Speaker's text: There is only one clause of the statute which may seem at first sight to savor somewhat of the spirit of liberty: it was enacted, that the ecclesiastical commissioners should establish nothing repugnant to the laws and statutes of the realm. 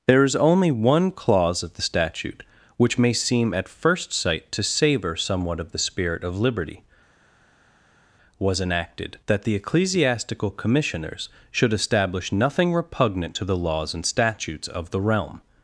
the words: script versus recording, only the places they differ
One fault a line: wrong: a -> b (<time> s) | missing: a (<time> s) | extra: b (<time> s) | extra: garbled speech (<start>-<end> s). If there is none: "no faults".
missing: it (6.8 s)